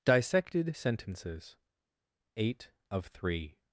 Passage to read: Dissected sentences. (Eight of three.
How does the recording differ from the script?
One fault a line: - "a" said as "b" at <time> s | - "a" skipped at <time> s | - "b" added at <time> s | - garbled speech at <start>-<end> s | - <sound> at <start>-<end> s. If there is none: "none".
none